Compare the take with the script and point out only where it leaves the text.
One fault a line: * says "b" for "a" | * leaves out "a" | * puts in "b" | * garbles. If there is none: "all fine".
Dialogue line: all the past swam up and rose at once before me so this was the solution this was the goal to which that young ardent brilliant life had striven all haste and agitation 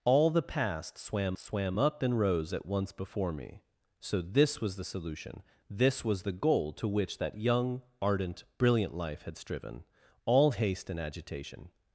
* puts in "swam"